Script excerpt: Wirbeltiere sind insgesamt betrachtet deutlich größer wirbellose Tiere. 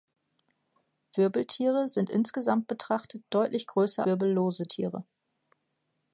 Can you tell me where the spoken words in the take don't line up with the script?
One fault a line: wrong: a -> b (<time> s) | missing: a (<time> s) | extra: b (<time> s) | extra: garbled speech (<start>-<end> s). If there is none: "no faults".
no faults